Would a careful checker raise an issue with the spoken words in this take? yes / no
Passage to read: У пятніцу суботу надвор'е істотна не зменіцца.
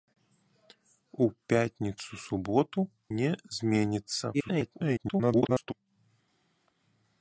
yes